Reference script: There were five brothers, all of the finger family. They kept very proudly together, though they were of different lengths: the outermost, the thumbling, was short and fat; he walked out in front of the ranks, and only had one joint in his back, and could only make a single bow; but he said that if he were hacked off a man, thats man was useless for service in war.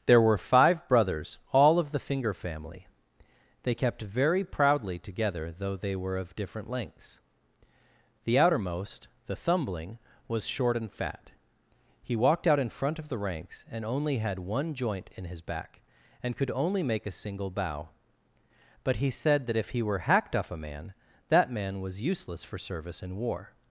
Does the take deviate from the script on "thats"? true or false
true